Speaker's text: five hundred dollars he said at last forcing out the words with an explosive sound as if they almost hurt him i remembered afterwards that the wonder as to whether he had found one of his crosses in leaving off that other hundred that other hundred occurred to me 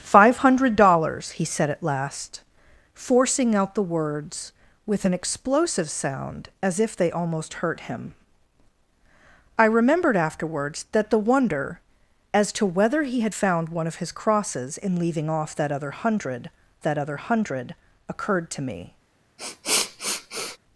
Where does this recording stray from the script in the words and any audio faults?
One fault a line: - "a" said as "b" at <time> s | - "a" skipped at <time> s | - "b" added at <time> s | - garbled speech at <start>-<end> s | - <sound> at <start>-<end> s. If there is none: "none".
- sniff at 19.4-20.6 s